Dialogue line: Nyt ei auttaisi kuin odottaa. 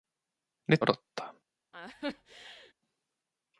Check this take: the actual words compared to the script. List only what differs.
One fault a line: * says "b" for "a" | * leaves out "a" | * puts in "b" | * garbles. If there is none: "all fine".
* leaves out "ei auttaisi kuin"